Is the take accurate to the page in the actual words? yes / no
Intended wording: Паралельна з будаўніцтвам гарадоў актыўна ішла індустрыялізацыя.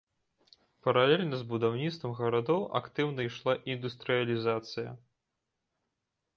yes